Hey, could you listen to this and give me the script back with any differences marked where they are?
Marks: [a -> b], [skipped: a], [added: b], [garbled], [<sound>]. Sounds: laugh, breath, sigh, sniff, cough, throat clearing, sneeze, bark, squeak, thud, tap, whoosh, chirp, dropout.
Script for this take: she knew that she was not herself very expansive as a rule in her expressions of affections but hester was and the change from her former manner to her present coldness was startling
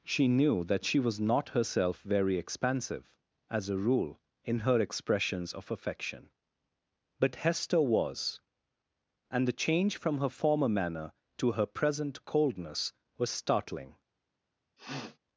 she knew that she was not herself very expansive as a rule in her expressions of [affections -> affection] but hester was and the change from her former manner to her present coldness was startling [sniff]